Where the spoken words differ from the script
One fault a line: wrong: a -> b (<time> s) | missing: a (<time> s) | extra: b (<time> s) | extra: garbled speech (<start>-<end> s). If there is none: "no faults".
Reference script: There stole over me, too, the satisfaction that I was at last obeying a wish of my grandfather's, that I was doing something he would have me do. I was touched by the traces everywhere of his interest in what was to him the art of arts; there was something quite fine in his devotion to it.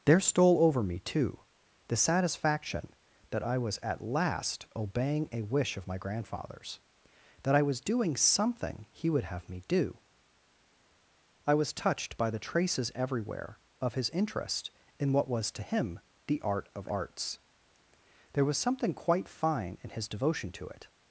no faults